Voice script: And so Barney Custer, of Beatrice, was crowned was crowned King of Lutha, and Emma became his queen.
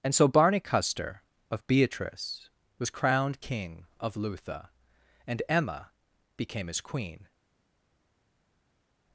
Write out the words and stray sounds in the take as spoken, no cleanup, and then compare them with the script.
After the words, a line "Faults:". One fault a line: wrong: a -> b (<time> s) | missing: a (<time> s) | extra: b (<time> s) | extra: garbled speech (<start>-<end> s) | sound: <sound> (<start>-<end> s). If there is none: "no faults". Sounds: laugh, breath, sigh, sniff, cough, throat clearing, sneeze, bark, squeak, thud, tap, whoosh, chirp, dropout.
And so Barney Custer, of Beatrice, was crowned King of Lutha, and Emma became his queen.
Faults:
missing: was crowned (3.4 s)